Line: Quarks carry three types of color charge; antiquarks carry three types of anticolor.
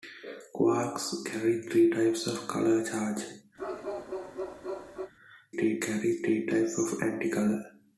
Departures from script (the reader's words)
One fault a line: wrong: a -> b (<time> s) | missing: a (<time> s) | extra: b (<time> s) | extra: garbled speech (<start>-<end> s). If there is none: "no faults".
wrong: antiquarks -> three (5.5 s)